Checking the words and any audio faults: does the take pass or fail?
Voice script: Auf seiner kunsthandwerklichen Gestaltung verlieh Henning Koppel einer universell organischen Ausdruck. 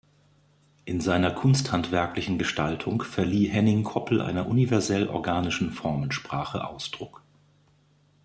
fail